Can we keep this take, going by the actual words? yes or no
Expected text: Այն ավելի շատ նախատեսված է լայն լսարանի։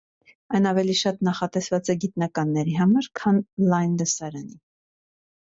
no